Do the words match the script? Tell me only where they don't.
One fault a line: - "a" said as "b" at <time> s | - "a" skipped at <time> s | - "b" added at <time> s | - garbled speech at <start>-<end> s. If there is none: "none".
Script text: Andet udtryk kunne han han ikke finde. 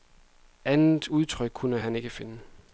- "han" skipped at 1.9 s